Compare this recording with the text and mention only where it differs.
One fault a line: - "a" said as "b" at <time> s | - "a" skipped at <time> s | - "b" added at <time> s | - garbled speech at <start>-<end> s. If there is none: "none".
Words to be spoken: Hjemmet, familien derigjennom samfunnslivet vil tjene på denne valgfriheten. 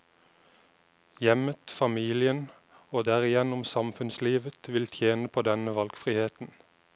- "og" added at 2.9 s